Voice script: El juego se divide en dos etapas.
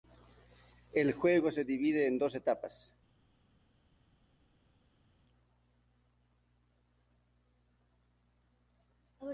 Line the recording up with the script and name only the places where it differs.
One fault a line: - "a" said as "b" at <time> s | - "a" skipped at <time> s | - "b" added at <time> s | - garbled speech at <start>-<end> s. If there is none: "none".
none